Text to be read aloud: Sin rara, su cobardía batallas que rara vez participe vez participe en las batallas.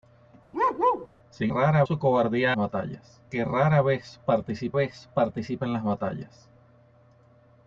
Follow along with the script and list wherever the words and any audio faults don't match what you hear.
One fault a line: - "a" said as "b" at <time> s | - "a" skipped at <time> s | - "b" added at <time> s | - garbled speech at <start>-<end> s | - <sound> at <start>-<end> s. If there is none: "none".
- bark at 0.5-1.1 s